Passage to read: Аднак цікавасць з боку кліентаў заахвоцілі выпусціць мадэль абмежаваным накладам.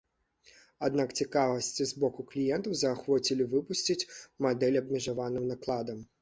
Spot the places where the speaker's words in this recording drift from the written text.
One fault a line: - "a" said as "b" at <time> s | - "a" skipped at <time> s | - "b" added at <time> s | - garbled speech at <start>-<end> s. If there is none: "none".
none